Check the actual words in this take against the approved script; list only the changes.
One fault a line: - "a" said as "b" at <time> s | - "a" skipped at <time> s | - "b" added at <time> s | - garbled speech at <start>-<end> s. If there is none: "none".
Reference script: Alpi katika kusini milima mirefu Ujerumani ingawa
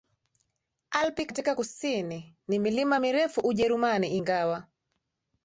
- "ni" added at 2.5 s